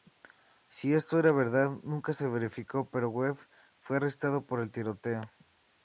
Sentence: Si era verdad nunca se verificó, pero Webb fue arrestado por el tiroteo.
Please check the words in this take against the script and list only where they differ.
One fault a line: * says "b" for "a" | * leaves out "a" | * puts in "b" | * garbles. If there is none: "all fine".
* puts in "esto"